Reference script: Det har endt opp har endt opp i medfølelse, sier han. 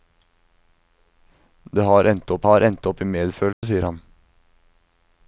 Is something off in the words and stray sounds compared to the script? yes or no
yes